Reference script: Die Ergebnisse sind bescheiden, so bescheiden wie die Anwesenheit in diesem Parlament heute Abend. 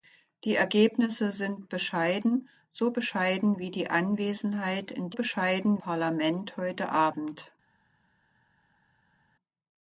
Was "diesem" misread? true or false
true